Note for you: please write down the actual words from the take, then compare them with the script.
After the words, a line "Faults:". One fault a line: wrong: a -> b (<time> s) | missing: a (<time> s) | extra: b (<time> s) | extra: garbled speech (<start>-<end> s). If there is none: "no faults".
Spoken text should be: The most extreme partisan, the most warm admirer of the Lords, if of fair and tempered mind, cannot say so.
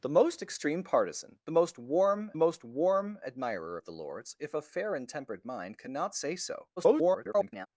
The most extreme partisan, the most warm most warm admirer of the Lords, if of fair and tempered mind, cannot say so. [garbled]
Faults:
extra: most warm (2.4 s)
extra: garbled speech (6.8-7.7 s)